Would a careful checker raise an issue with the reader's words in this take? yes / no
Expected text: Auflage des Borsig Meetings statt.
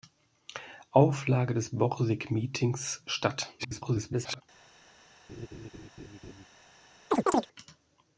yes